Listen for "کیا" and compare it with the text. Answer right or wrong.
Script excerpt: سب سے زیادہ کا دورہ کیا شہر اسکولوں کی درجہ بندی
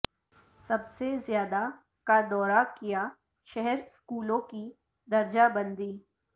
right